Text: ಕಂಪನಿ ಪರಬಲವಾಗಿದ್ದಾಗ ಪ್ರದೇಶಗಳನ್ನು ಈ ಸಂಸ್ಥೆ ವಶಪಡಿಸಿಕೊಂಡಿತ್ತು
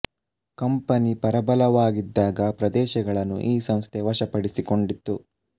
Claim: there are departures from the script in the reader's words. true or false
false